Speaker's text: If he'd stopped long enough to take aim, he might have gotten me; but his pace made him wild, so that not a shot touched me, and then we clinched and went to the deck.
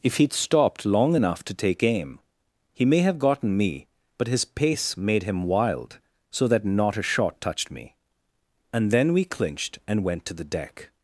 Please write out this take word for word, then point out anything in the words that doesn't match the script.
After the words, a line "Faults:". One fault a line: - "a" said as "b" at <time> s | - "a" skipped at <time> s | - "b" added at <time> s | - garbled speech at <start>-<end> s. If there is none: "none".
If he'd stopped long enough to take aim, he may have gotten me; but his pace made him wild, so that not a shot touched me, and then we clinched and went to the deck.
Faults:
- "might" said as "may" at 2.9 s